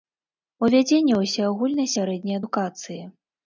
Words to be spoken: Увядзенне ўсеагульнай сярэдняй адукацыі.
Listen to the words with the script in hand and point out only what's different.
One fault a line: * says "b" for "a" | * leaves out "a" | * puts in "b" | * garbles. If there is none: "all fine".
all fine